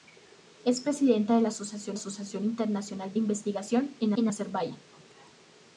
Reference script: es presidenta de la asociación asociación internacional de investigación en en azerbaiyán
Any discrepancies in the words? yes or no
no